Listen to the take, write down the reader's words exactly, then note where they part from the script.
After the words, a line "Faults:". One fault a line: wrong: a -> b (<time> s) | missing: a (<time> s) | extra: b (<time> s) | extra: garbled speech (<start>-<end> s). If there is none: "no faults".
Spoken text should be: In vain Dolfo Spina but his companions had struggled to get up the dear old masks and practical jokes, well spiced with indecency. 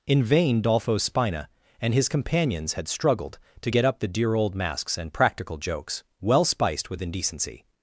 In vain Dolfo Spina and his companions had struggled to get up the dear old masks and practical jokes, well spiced with indecency.
Faults:
wrong: but -> and (1.8 s)